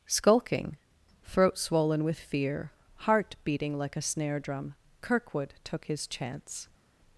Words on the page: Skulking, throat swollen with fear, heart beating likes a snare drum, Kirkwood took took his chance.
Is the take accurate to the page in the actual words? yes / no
no